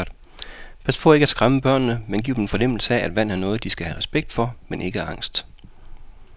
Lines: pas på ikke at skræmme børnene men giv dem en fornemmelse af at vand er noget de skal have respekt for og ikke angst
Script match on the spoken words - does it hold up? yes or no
no